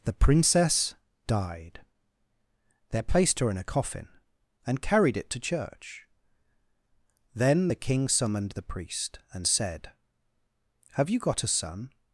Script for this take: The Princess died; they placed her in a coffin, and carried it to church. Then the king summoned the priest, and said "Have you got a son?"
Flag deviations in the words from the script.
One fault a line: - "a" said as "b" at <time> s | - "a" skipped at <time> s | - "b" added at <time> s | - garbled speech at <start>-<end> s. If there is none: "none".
none